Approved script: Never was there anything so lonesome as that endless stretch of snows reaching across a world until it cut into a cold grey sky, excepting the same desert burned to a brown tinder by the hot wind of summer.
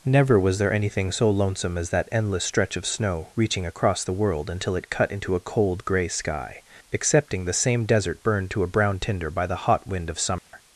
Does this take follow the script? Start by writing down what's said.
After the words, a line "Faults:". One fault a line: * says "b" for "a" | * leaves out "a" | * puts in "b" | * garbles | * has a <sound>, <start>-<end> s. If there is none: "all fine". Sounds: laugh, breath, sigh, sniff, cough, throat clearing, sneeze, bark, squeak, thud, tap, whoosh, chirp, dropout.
Never was there anything so lonesome as that endless stretch of snow reaching across the world until it cut into a cold grey sky, excepting the same desert burned to a brown tinder by the hot wind of summer.
Faults:
* says "snow" for "snows"
* says "the" for "a"
* has a dropout, 10.4-10.5 s